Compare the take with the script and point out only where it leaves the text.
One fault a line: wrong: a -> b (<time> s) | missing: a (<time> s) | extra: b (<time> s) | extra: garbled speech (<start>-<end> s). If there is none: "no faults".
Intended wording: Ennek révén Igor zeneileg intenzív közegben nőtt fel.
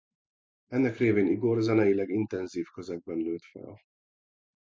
no faults